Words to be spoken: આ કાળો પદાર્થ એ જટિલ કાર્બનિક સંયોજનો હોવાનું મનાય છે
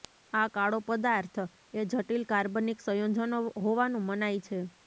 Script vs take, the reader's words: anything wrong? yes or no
no